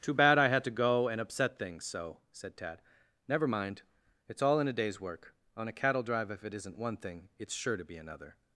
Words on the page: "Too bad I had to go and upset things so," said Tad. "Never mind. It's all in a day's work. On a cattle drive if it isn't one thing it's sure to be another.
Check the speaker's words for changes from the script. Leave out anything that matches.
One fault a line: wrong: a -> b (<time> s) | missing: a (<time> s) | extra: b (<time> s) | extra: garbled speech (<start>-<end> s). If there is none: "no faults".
no faults